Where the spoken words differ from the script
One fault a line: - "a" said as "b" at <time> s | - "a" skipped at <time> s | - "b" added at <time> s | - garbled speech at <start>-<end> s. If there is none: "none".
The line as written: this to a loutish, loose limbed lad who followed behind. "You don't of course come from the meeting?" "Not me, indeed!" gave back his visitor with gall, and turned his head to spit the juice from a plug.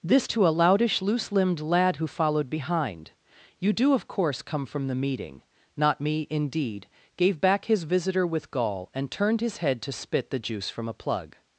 - "don't" said as "do" at 3.7 s